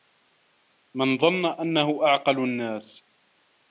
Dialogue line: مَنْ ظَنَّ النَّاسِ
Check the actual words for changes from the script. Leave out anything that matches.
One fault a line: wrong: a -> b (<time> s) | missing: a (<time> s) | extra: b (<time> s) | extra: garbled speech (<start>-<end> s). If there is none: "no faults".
extra: أَنَّهُ أَعْقَلُ (1.4 s)